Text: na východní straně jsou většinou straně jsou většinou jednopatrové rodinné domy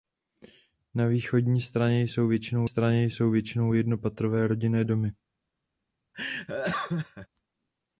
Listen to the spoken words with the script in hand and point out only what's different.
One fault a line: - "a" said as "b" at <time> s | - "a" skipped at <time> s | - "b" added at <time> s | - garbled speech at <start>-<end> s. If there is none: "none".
none